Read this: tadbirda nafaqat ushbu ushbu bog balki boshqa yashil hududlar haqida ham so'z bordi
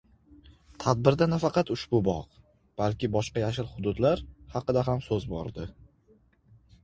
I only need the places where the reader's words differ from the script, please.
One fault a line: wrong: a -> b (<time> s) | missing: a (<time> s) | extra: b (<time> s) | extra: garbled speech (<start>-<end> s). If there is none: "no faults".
missing: ushbu (2.0 s)